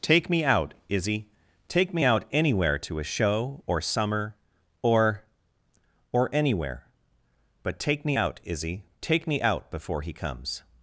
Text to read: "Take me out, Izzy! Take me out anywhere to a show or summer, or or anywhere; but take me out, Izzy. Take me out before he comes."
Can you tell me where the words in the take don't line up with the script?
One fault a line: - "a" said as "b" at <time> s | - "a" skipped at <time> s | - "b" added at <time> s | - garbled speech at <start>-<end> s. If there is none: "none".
none